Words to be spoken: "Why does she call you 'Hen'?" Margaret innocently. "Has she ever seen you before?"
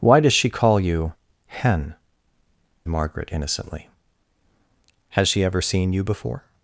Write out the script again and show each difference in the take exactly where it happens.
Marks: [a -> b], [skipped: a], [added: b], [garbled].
"Why does she call you 'Hen'?" Margaret innocently. "Has she ever seen you before?"